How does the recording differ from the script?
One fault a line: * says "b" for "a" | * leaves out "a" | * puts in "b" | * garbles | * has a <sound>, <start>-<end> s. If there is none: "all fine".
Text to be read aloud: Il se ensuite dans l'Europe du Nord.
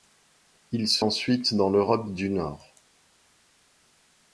all fine